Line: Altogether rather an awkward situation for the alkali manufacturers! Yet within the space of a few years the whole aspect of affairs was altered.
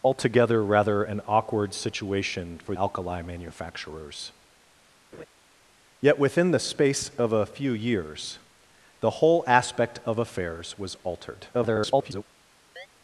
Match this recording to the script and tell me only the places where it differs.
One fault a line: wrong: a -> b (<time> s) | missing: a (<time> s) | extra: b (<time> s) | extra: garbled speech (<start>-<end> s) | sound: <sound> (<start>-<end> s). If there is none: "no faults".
missing: the (2.8 s)
sound: laugh (5.1-5.3 s)
extra: garbled speech (11.5-12.2 s)
sound: chirp (12.8-12.9 s)